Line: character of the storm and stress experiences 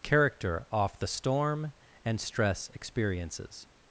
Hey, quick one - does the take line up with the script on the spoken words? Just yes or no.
no